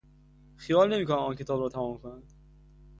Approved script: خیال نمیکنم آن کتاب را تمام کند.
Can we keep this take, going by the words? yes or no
yes